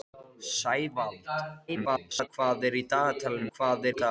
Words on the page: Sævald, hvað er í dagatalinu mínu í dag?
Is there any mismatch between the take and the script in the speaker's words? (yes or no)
yes